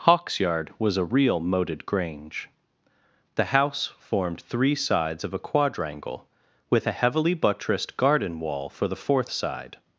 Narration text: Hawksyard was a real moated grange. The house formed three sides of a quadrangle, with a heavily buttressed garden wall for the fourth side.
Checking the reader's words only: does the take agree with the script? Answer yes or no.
yes